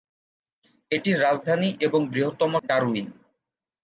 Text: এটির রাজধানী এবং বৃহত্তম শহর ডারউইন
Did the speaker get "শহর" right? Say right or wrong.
wrong